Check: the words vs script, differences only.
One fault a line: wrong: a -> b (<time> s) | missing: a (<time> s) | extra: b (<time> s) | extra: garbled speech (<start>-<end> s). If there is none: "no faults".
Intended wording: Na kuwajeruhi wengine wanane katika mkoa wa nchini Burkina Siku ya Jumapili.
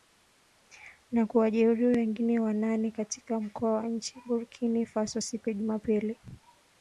extra: Faso (4.9 s)